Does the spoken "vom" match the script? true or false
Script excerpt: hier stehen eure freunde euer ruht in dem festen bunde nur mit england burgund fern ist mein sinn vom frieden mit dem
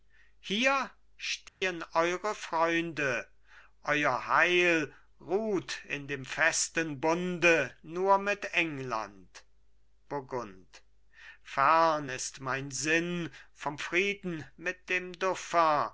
true